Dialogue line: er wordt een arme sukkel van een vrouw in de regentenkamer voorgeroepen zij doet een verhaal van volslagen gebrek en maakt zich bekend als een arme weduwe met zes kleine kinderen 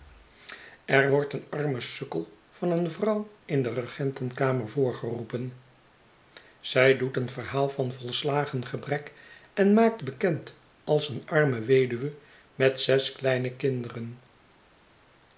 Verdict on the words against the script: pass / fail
fail